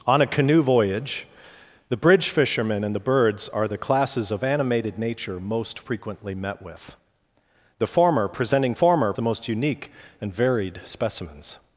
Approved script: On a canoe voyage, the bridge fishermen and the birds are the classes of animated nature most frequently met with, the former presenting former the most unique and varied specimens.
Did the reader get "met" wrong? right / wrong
right